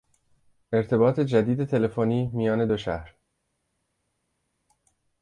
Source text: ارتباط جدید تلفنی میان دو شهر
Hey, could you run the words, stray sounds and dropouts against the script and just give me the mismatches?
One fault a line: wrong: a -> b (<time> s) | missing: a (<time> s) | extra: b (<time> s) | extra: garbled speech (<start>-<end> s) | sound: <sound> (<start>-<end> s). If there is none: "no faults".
no faults